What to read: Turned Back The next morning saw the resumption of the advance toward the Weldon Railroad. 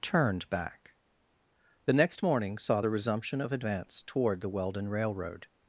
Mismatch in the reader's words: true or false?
true